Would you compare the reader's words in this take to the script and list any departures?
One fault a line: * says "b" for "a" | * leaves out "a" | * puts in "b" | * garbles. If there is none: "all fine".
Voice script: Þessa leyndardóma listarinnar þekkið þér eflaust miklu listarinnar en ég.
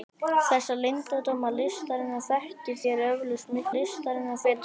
all fine